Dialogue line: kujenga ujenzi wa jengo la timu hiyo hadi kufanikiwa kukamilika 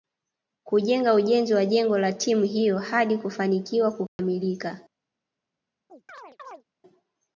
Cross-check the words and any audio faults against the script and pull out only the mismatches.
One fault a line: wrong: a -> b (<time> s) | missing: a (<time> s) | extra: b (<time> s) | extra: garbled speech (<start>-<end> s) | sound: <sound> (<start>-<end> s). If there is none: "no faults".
sound: dropout (4.1-4.2 s)
sound: chirp (5.9-6.6 s)